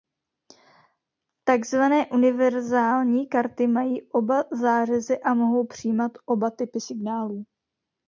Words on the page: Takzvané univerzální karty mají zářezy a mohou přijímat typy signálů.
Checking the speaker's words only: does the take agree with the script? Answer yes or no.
no